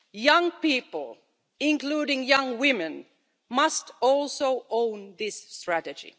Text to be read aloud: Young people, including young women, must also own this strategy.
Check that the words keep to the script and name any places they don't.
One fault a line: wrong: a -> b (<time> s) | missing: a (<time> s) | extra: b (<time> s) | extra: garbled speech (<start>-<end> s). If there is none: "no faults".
no faults